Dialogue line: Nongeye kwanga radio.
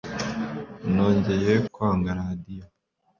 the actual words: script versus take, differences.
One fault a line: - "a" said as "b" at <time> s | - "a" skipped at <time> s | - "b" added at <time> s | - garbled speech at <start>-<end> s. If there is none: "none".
none